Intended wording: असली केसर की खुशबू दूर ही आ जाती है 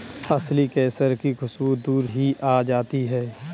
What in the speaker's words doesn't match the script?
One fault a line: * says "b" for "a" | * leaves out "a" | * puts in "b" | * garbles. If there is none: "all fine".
all fine